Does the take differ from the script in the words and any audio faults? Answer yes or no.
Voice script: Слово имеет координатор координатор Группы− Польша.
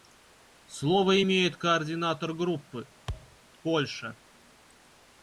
yes